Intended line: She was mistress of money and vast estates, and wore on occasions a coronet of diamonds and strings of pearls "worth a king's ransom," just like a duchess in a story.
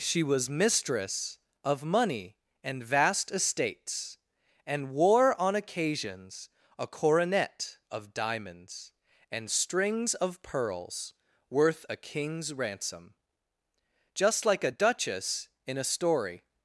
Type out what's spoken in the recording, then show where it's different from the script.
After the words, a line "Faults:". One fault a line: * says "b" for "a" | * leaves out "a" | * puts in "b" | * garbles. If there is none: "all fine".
She was mistress of money and vast estates, and wore on occasions a coronet of diamonds and strings of pearls "worth a king's ransom," just like a duchess in a story.
Faults:
all fine